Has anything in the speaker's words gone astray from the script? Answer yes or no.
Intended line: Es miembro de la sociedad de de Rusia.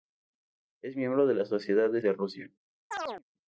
no